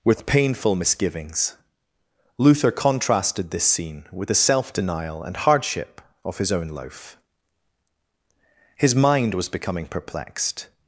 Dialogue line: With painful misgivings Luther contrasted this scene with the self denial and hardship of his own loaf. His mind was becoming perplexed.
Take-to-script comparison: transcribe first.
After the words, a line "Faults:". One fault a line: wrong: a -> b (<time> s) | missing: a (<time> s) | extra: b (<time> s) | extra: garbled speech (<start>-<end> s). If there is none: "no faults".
With painful misgivings Luther contrasted this scene with the self denial and hardship of his own loaf. His mind was becoming perplexed.
Faults:
no faults